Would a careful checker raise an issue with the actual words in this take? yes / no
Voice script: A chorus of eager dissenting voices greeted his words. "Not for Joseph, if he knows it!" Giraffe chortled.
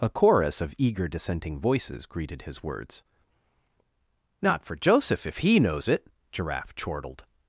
no